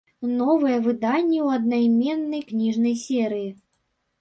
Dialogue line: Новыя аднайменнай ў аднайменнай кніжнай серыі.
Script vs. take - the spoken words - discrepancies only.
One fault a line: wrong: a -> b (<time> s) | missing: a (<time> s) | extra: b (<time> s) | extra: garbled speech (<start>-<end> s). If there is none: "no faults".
wrong: аднайменнай -> выданні (0.8 s)